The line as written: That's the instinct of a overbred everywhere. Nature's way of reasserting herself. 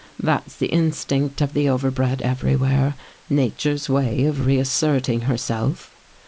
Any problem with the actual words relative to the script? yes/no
yes